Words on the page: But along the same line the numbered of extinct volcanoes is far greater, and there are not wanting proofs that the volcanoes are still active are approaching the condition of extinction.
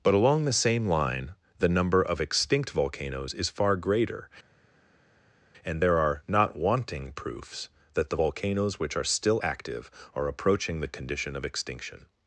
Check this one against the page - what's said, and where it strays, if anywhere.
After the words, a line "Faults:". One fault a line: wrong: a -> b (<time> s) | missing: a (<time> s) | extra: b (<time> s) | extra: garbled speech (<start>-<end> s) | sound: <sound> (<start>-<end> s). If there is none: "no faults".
But along the same line the number of extinct volcanoes is far greater, and there are not wanting proofs that the volcanoes which are still active are approaching the condition of extinction.
Faults:
wrong: numbered -> number (1.7 s)
extra: which (8.8 s)